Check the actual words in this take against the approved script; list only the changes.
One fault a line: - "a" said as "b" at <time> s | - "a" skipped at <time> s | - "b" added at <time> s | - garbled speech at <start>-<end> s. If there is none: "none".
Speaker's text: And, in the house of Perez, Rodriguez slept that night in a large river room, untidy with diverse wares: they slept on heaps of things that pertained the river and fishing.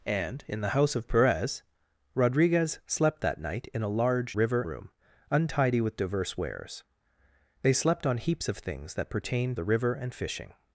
none